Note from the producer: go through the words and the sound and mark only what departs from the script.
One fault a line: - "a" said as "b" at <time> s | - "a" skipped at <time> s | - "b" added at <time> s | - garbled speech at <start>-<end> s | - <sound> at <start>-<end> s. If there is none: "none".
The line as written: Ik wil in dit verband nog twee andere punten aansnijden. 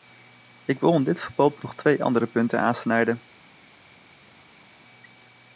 none